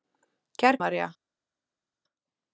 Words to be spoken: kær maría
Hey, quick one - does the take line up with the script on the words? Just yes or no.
yes